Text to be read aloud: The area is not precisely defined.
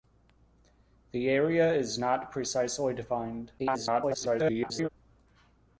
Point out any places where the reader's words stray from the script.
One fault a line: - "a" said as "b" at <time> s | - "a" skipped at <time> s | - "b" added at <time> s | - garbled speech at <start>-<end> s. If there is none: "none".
- garbled speech at 3.6-4.9 s